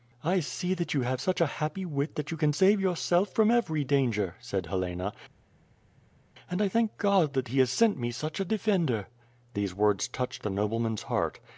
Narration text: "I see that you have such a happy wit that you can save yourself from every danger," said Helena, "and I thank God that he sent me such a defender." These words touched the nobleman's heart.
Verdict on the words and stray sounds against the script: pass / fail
fail